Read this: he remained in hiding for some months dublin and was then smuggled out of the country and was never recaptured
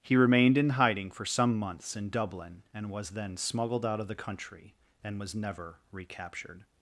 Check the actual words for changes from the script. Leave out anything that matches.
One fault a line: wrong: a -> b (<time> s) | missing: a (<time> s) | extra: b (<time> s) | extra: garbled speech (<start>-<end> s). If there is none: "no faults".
extra: in (1.9 s)